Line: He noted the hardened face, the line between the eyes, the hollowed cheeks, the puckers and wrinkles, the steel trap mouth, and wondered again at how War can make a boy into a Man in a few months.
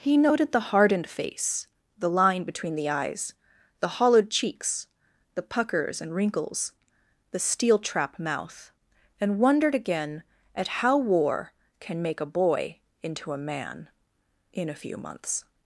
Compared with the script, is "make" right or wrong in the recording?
right